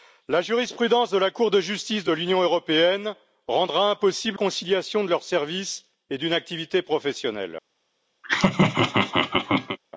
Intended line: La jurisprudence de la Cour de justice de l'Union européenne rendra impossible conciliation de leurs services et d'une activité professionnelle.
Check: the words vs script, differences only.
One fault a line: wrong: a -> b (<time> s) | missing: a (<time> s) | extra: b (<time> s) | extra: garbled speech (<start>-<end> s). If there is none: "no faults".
no faults